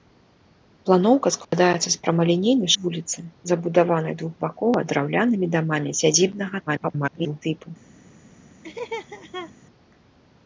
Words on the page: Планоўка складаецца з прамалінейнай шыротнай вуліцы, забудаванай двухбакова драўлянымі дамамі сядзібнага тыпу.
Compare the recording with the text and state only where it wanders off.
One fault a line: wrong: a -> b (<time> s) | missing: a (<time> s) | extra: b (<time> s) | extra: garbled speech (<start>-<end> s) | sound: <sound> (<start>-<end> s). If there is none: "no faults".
sound: dropout (1.4-1.5 s)
missing: шыротнай (2.7 s)
extra: garbled speech (6.7-7.4 s)
sound: laugh (8.6-9.5 s)